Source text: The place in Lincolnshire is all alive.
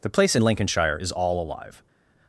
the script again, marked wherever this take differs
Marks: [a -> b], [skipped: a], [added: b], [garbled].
The place in Lincolnshire is all alive.